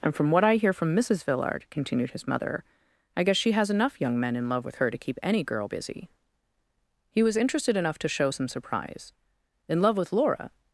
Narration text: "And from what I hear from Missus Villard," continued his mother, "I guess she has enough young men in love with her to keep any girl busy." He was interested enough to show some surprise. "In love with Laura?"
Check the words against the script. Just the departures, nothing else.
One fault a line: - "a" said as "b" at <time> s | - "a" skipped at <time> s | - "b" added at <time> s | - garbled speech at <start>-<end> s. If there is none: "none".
none